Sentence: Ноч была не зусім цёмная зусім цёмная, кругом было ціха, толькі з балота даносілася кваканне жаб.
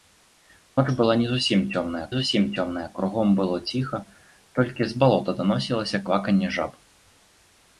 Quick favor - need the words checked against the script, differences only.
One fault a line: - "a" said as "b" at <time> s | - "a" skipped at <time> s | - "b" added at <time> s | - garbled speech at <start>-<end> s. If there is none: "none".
none